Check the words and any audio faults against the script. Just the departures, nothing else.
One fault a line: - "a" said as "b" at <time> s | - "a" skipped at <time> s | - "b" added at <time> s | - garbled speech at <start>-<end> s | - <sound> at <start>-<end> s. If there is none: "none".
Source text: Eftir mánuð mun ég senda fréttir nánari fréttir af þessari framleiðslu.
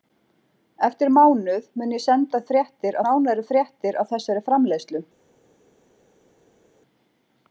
none